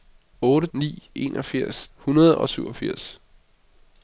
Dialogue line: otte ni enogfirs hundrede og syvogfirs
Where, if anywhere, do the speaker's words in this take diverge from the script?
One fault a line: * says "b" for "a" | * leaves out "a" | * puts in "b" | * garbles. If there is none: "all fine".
all fine